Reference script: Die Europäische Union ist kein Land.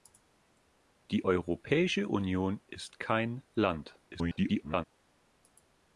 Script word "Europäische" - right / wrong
right